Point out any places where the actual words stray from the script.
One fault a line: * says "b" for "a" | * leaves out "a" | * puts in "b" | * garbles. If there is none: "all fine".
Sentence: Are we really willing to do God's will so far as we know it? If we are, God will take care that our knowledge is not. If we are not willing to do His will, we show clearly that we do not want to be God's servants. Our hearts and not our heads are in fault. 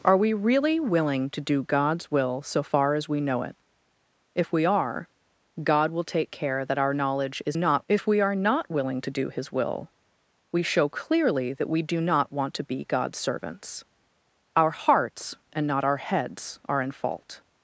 all fine